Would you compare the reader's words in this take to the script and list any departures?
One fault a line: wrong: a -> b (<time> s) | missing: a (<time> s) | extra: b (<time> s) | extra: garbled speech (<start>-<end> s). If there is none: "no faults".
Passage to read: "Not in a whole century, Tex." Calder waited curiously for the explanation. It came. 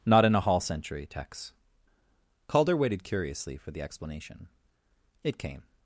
wrong: whole -> hall (0.4 s)